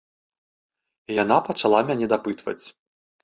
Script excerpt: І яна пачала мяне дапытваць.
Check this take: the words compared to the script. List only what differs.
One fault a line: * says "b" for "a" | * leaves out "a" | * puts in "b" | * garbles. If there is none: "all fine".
all fine